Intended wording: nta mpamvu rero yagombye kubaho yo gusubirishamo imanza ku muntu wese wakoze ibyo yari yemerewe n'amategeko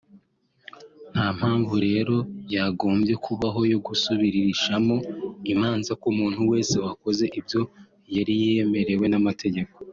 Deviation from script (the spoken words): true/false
false